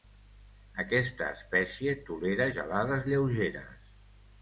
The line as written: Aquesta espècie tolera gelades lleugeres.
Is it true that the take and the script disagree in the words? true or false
false